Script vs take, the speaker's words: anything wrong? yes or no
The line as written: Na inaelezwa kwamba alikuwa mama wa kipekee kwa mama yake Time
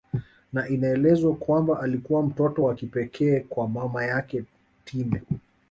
yes